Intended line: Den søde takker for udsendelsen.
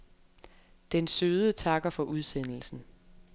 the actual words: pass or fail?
pass